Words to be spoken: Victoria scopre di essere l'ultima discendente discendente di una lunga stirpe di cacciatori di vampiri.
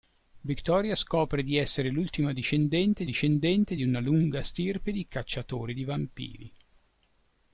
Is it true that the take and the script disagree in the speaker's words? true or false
false